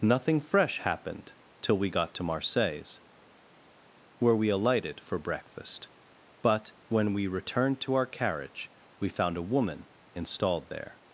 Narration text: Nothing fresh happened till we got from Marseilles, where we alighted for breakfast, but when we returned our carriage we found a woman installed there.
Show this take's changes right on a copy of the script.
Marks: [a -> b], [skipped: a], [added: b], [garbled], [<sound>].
Nothing fresh happened till we got [from -> to] Marseilles, where we alighted for breakfast, but when we returned [added: to] our carriage we found a woman installed there.